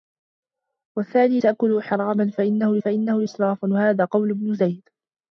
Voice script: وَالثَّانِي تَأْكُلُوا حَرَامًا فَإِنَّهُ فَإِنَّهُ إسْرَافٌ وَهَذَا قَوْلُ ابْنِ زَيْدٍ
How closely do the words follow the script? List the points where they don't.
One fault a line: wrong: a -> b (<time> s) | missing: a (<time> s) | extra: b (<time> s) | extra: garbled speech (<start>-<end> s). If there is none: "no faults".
no faults